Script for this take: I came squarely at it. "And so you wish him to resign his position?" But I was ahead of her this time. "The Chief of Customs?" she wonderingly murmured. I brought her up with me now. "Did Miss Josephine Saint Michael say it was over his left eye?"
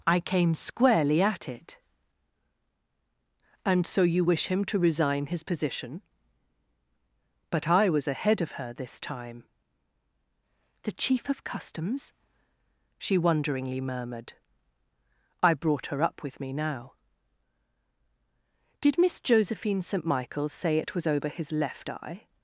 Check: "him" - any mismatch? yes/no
no